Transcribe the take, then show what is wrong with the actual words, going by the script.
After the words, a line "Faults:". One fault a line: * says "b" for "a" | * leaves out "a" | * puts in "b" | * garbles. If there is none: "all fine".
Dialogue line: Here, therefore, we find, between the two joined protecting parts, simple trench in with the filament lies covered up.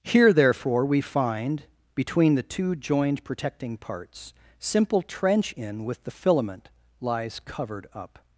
Here, therefore, we find, between the two joined protecting parts, simple trench in with the filament lies covered up.
Faults:
all fine